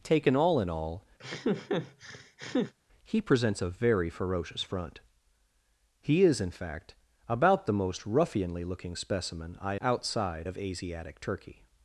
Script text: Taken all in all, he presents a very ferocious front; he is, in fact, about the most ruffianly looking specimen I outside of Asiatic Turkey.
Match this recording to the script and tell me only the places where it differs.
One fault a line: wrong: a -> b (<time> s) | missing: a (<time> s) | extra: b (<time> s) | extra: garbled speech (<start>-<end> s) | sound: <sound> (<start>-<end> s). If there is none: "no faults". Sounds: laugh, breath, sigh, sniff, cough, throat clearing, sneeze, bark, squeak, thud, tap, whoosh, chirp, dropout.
sound: laugh (1.2-2.7 s)